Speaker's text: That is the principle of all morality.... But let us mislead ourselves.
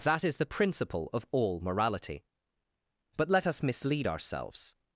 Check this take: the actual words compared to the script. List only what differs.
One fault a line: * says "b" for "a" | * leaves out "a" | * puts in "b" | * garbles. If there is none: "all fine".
all fine